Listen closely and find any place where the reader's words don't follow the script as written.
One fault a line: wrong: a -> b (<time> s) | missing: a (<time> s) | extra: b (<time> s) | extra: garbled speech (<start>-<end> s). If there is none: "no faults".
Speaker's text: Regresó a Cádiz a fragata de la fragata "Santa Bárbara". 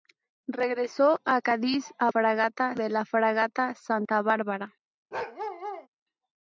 no faults